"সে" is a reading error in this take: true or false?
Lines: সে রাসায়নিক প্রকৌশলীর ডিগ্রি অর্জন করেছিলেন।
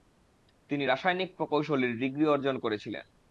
true